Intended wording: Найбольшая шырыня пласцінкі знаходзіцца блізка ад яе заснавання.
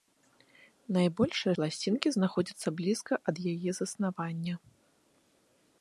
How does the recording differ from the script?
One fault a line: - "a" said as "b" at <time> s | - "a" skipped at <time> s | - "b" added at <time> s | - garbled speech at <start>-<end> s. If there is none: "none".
- "шырыня" skipped at 1.5 s